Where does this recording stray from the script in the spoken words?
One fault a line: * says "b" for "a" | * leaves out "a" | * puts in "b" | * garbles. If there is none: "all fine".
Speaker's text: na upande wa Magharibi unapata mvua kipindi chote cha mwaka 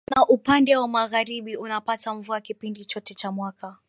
all fine